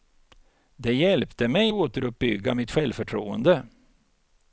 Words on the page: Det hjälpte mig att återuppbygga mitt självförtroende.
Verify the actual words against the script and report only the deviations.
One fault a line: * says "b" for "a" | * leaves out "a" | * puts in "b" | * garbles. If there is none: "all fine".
* leaves out "att"